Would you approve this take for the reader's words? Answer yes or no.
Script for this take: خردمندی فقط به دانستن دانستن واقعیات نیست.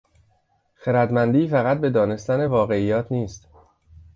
no